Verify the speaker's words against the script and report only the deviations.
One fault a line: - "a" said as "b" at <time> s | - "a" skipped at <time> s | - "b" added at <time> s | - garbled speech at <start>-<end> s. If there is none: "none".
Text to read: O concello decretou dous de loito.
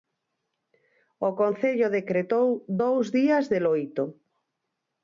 - "días" added at 3.2 s